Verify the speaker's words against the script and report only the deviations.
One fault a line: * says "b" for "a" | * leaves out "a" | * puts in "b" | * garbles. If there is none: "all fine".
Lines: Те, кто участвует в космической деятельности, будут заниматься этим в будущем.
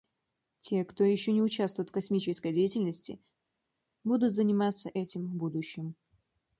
* puts in "еще не"